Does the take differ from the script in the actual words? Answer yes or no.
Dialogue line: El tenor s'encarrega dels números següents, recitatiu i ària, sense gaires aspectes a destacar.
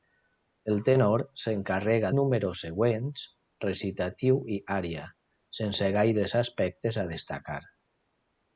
yes